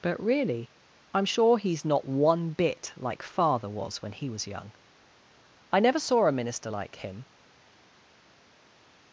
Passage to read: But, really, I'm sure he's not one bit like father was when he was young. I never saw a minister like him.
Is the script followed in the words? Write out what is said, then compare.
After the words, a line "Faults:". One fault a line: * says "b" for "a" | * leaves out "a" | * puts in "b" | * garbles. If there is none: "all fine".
But, really, I'm sure he's not one bit like father was when he was young. I never saw a minister like him.
Faults:
all fine